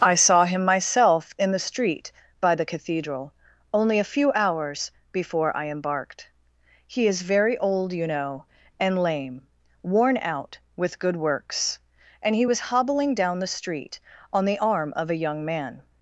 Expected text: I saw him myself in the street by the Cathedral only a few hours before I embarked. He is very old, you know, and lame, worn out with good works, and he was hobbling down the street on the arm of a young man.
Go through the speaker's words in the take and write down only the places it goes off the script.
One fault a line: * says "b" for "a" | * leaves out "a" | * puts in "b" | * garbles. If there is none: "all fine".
all fine